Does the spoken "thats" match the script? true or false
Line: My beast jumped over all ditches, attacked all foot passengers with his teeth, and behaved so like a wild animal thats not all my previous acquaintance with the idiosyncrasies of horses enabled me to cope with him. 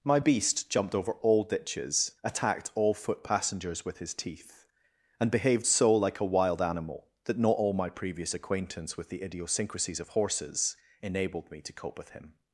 false